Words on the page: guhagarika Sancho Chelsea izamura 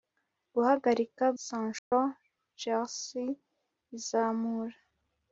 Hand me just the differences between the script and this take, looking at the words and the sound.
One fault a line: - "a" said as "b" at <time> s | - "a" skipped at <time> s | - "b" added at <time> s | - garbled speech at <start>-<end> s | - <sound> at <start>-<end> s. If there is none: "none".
- dropout at 1.8-1.9 s